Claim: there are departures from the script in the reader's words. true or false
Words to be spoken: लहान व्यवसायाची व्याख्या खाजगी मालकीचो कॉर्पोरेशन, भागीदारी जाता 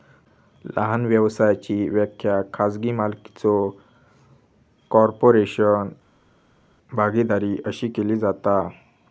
true